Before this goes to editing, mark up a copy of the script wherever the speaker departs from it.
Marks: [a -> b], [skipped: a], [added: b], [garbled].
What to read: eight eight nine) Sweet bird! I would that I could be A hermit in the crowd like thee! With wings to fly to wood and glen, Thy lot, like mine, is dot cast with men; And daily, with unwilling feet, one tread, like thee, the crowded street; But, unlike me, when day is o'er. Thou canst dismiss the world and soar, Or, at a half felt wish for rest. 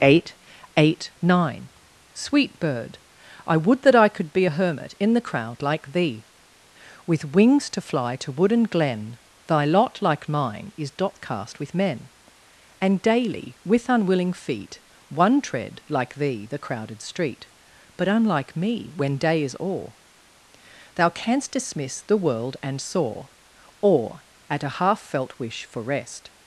eight eight nine) Sweet bird! I would that I could be A hermit in the crowd like thee! With wings to fly to wood and glen, Thy lot, like mine, is dot cast with men; And daily, with unwilling feet, one tread, like thee, the crowded street; But, unlike me, when day is o'er. Thou canst dismiss the world and soar, Or, at a half felt wish for rest.